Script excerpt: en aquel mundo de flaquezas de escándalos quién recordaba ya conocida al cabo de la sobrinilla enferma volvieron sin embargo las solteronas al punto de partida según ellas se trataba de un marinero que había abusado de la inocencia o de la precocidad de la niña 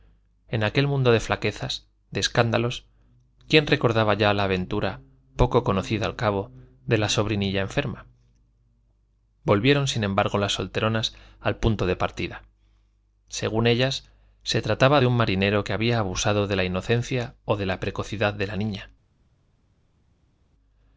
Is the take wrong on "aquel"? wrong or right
right